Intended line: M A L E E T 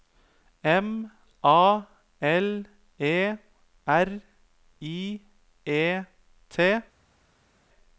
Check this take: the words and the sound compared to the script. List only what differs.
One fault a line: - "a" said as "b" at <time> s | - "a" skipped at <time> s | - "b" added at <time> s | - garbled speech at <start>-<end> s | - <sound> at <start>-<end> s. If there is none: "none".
- "R I" added at 3.9 s